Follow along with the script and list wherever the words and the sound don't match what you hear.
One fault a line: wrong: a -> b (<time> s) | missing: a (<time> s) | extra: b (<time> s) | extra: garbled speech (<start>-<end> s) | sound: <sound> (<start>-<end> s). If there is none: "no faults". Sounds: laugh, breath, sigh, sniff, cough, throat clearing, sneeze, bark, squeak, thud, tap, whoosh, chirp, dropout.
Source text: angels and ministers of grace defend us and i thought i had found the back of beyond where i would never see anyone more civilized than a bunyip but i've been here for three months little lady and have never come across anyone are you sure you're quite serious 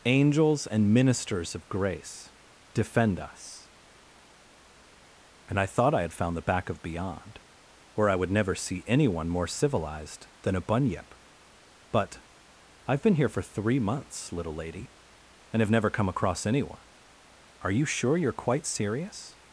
no faults